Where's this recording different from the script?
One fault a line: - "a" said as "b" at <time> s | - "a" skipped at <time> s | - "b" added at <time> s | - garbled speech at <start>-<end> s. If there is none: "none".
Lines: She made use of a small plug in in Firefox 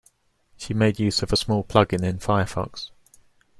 none